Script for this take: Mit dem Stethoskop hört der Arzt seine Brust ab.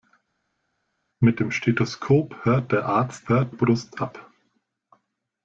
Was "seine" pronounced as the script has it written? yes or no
no